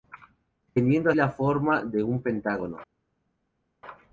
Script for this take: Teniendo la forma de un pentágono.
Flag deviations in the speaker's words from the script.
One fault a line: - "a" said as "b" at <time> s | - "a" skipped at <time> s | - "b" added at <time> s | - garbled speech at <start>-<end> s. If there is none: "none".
none